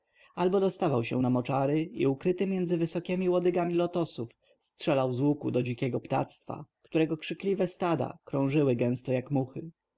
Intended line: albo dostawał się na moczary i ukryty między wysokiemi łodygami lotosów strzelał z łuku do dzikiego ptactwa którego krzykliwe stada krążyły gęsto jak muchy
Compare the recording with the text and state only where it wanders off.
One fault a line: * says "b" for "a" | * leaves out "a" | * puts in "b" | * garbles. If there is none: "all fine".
all fine